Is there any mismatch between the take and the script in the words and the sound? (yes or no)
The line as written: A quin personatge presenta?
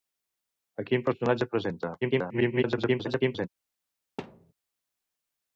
yes